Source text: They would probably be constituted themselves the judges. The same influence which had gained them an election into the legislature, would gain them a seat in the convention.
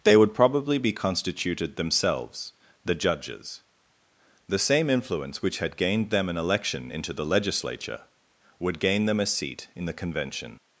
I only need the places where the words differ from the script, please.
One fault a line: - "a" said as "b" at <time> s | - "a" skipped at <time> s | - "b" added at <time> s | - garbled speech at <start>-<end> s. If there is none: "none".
none